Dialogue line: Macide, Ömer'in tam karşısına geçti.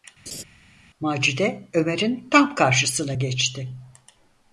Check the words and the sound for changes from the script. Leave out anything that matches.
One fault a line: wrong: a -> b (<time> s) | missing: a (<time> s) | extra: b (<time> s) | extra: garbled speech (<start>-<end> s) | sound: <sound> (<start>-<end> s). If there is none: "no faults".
sound: laugh (0.3-0.4 s)